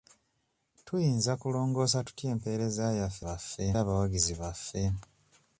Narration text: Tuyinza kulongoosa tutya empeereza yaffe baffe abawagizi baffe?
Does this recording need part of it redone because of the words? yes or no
no